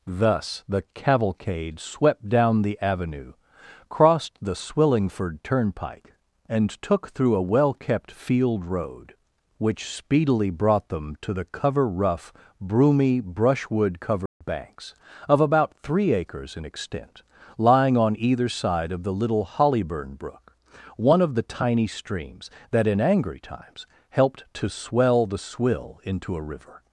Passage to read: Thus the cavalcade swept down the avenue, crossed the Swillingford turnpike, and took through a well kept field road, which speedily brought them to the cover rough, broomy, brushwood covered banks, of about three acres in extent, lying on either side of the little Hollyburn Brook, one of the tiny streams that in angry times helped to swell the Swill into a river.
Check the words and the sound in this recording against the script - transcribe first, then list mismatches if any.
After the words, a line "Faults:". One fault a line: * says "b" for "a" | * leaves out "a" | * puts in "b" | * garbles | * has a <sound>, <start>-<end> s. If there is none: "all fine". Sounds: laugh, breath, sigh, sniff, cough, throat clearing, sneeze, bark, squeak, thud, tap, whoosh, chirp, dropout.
Thus the cavalcade swept down the avenue, crossed the Swillingford turnpike, and took through a well kept field road, which speedily brought them to the cover rough, broomy, brushwood covered banks, of about three acres in extent, lying on either side of the little Hollyburn Brook, one of the tiny streams that in angry times helped to swell the Swill into a river.
Faults:
* has a dropout, 14.3-14.4 s